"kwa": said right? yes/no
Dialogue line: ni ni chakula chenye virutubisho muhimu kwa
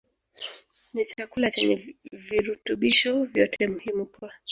yes